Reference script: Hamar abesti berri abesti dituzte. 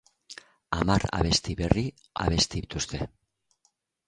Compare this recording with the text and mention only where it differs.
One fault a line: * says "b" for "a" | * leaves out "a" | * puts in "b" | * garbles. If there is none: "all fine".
all fine